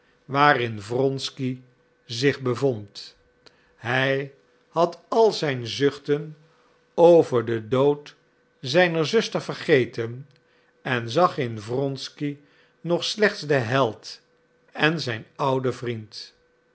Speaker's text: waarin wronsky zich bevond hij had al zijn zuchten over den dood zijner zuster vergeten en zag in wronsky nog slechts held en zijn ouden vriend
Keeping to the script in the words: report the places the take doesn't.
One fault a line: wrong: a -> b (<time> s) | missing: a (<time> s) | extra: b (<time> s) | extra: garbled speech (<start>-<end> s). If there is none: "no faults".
extra: den (13.5 s)